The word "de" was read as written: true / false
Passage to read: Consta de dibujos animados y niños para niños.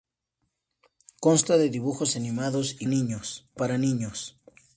true